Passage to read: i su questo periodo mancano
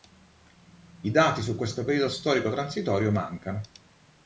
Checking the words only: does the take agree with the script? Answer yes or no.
no